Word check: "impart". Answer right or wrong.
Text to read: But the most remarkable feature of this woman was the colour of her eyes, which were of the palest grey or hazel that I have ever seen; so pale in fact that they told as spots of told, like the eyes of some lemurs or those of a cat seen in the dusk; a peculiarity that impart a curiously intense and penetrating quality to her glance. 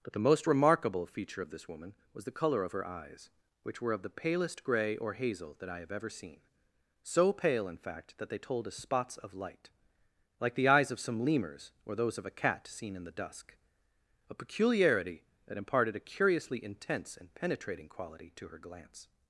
wrong